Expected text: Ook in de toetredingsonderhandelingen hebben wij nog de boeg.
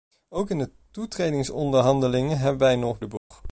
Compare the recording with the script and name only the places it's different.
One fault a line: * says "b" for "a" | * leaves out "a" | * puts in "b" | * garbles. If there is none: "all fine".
all fine